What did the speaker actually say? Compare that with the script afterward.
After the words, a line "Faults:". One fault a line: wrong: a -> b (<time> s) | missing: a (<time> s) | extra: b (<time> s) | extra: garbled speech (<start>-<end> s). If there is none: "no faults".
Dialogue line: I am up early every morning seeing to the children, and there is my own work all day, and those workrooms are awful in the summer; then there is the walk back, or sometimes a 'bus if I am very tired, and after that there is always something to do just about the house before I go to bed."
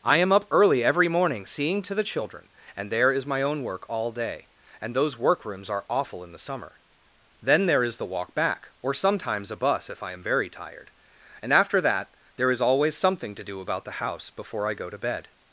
I am up early every morning seeing to the children, and there is my own work all day, and those workrooms are awful in the summer; then there is the walk back, or sometimes a 'bus if I am very tired, and after that there is always something to do about the house before I go to bed."
Faults:
missing: just (13.6 s)